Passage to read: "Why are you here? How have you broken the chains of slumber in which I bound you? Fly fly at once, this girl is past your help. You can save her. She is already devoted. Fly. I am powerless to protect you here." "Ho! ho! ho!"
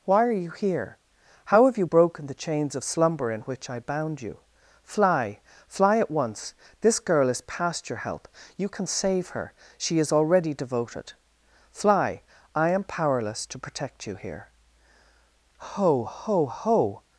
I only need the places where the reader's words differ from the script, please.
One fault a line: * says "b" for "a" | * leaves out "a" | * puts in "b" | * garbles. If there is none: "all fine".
all fine